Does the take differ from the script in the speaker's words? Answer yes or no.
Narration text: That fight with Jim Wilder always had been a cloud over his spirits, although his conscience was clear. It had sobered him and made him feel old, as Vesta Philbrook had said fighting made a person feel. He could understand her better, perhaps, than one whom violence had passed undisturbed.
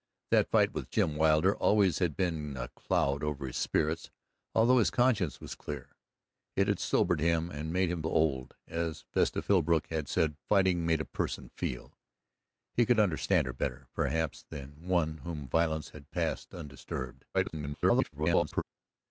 yes